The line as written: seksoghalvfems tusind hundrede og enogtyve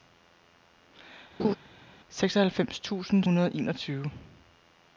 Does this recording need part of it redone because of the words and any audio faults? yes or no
yes